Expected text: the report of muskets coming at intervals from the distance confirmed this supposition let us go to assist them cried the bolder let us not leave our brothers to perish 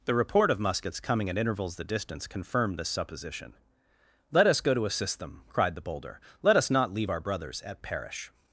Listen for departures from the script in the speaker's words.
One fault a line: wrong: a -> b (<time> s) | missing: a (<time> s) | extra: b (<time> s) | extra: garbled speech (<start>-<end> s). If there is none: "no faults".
missing: from (1.8 s)
wrong: to -> at (7.6 s)